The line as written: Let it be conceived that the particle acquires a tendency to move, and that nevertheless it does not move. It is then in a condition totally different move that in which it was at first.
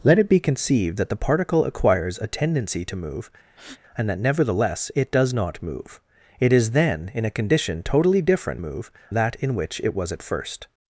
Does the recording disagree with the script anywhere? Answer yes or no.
no